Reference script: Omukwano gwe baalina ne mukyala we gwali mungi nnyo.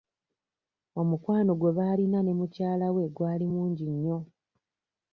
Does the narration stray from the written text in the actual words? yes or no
no